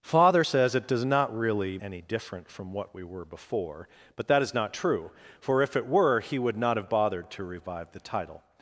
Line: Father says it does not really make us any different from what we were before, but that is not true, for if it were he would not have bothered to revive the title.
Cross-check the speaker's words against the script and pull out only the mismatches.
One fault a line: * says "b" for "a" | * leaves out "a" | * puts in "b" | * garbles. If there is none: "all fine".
* leaves out "make us"